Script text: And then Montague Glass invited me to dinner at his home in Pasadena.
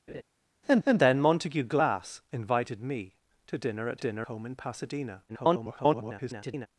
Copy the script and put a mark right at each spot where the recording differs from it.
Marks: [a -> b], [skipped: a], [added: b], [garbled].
And [added: and] then Montague Glass invited me to dinner at [his -> dinner] home in Pasadena. [garbled]